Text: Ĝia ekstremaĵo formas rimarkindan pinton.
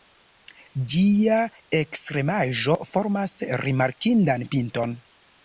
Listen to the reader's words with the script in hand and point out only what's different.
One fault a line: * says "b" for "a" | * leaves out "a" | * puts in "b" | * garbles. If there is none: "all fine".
all fine